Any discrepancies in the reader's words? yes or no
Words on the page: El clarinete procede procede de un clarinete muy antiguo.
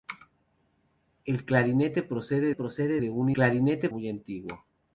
no